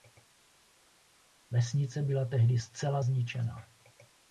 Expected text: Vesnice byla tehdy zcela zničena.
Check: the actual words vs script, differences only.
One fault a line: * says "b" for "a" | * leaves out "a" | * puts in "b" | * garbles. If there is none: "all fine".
all fine